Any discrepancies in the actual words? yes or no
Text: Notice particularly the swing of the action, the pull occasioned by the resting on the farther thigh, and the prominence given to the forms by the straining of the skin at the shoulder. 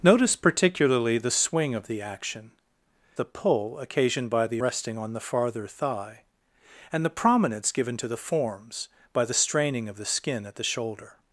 no